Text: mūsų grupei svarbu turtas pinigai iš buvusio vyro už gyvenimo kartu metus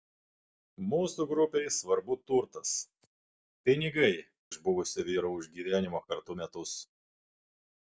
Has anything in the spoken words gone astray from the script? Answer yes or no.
no